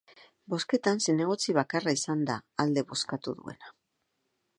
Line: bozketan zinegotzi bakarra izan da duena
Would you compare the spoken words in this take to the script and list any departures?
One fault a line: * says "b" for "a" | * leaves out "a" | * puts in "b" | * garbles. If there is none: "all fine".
* puts in "alde bozkatu"